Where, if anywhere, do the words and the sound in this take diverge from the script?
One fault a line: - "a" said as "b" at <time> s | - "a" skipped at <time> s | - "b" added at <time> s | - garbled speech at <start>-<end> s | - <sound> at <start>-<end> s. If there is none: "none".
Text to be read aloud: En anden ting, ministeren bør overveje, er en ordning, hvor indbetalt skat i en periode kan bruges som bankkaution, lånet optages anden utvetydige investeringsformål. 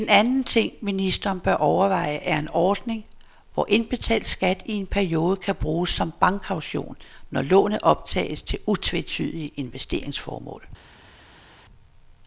- "når" added at 7.3 s
- "anden" said as "til" at 8.4 s